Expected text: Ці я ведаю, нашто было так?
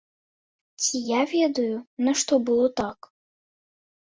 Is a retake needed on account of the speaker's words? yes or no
no